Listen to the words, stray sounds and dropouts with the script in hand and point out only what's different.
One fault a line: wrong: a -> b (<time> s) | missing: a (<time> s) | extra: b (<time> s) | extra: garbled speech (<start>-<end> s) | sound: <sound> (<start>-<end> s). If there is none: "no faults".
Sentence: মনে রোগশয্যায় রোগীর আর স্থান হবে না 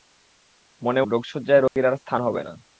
sound: dropout (1.7-1.8 s)